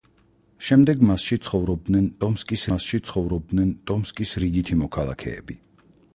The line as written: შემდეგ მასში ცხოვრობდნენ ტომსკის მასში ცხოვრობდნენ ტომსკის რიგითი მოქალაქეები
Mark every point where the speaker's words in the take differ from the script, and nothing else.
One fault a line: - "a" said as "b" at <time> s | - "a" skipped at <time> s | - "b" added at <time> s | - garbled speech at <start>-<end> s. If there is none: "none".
none